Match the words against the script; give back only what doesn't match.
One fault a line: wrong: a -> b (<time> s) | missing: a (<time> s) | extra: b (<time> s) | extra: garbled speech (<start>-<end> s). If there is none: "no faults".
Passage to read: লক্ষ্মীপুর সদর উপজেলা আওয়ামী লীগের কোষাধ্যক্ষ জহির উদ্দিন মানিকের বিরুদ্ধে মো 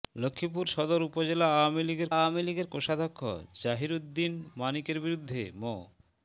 extra: আওয়ামী লীগের (2.1 s)